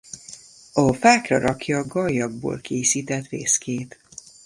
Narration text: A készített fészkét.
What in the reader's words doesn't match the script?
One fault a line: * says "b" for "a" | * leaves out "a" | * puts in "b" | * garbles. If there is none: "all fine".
* puts in "fákra rakja gallyakból"